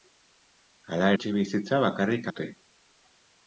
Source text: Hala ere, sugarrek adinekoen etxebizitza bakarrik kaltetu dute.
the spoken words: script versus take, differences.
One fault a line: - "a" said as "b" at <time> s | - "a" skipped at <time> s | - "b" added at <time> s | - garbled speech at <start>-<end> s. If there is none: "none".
- "ere sugarrek adinekoen" skipped at 1.1 s
- "kaltetu" skipped at 2.3 s